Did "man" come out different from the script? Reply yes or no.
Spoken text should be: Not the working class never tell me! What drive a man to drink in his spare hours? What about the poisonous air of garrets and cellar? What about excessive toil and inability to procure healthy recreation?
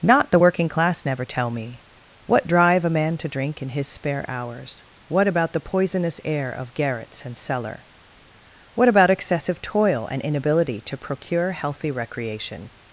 no